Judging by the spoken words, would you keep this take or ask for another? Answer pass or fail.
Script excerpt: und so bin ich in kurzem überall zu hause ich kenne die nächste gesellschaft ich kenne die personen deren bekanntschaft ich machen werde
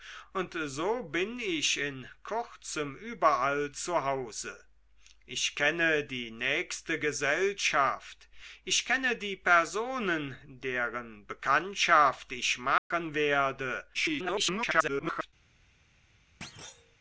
fail